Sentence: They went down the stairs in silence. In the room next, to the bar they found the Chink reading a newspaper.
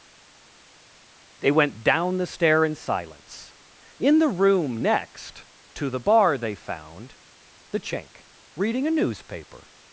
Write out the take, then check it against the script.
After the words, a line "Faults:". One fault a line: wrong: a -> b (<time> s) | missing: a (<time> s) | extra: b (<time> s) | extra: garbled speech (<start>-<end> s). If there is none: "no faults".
They went down the stair in silence. In the room next, to the bar they found the Chink reading a newspaper.
Faults:
wrong: stairs -> stair (2.3 s)